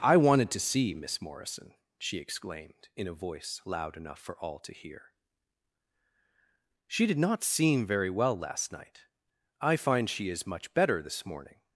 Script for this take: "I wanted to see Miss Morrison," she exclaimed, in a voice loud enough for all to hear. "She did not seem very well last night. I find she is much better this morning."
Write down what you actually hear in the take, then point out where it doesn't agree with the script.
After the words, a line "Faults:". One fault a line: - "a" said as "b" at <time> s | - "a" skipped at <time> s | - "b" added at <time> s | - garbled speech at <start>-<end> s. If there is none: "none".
"I wanted to see Miss Morrison," she exclaimed, in a voice loud enough for all to hear. "She did not seem very well last night. I find she is much better this morning."
Faults:
none